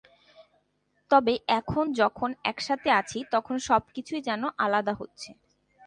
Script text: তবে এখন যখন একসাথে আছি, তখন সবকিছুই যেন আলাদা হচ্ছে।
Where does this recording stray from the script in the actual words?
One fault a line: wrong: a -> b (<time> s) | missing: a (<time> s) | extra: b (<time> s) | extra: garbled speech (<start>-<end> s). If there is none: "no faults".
no faults